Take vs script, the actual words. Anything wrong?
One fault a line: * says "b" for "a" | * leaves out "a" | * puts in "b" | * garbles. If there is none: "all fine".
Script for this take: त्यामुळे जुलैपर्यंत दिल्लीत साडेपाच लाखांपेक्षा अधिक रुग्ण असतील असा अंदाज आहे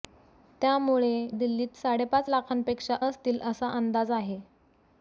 * leaves out "जुलैपर्यंत"
* leaves out "अधिक रुग्ण"